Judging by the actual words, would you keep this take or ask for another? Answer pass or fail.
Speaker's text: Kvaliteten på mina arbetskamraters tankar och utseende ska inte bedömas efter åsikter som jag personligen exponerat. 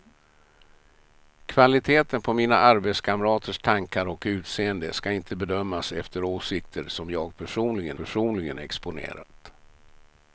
fail